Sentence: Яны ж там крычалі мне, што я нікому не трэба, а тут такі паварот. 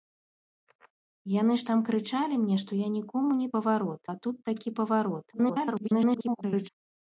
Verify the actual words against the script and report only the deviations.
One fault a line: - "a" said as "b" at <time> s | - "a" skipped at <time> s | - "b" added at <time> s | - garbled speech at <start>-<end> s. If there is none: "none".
- "трэба" said as "паварот" at 3.6 s
- garbled speech at 5.3-6.7 s